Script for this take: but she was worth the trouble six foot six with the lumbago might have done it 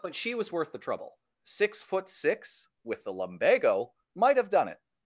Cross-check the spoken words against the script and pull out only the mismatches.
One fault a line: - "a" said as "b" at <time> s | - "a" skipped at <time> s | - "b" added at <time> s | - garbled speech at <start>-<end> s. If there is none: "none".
none